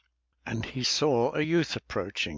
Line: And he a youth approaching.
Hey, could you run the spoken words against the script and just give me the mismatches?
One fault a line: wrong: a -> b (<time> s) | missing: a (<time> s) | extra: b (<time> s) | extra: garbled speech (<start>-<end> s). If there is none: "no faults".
extra: saw (0.8 s)